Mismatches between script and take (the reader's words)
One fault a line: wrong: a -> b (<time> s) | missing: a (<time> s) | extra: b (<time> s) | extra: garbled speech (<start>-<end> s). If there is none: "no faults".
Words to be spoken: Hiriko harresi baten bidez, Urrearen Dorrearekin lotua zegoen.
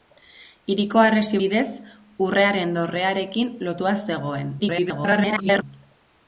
missing: baten (1.4 s)
extra: garbled speech (4.6-5.6 s)